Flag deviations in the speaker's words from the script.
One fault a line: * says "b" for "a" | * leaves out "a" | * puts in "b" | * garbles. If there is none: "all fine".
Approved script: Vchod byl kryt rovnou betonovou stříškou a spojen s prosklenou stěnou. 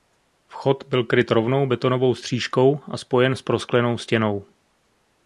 all fine